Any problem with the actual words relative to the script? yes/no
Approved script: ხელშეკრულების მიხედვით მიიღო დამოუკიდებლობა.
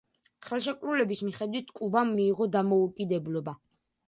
yes